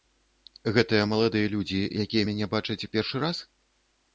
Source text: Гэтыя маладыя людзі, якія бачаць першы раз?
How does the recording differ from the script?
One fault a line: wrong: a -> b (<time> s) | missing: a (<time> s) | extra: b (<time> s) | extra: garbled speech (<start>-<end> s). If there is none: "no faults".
extra: мяне (2.3 s)